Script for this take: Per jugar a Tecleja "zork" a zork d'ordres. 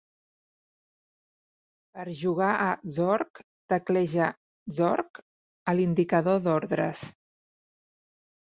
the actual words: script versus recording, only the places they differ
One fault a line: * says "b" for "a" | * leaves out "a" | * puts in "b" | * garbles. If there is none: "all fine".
* puts in "Zork"
* says "l'indicador" for "zork"